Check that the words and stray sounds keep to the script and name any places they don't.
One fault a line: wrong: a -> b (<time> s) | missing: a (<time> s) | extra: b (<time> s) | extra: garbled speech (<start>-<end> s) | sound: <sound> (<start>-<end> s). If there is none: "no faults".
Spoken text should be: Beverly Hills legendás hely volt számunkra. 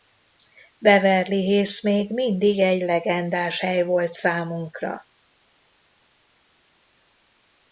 extra: még mindig egy (1.8 s)